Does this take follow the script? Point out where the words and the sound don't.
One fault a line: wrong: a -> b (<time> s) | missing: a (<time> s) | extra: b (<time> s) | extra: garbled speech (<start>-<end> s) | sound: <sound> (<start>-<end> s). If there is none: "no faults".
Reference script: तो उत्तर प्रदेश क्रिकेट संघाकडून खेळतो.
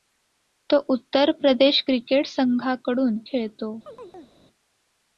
sound: chirp (3.9-4.4 s)